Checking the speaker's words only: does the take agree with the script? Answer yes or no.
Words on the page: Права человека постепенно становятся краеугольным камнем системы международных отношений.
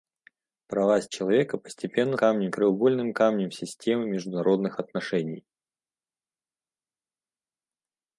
no